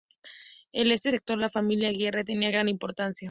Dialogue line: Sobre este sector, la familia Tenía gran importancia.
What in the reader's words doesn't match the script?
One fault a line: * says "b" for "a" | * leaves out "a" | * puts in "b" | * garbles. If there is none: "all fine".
* says "En" for "Sobre"
* puts in "Aguirre"